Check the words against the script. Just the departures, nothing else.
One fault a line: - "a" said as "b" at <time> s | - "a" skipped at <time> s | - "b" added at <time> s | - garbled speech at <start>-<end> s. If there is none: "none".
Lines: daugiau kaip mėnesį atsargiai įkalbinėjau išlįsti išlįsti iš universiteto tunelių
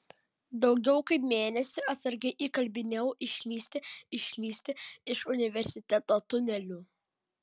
none